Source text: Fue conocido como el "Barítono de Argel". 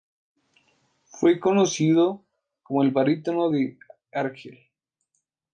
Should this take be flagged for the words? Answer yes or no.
no